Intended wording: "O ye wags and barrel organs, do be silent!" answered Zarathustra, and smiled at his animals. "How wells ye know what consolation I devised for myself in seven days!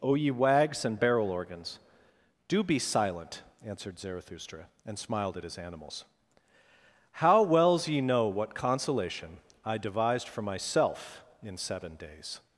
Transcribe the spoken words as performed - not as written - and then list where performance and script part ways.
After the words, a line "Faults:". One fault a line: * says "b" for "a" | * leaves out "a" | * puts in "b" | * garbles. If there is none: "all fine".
"O ye wags and barrel organs, do be silent!" answered Zarathustra, and smiled at his animals. "How wells ye know what consolation I devised for myself in seven days!
Faults:
all fine